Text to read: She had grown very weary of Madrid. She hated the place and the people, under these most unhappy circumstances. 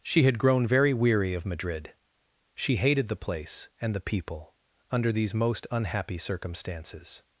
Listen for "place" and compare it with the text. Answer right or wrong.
right